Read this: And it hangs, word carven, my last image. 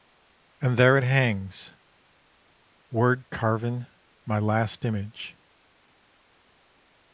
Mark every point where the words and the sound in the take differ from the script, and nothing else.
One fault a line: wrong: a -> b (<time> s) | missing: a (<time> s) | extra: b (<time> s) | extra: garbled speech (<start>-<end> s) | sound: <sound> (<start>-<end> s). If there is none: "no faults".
extra: there (0.8 s)